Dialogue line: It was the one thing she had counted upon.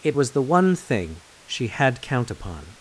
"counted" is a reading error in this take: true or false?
true